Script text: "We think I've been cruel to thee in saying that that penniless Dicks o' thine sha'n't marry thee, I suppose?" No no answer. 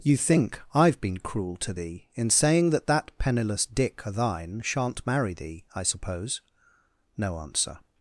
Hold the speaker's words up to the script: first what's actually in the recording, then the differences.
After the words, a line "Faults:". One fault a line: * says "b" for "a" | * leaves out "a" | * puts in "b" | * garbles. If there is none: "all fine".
"You think I've been cruel to thee in saying that that penniless Dick o' thine sha'n't marry thee, I suppose?" No answer.
Faults:
* says "You" for "We"
* says "Dick" for "Dicks"
* leaves out "no"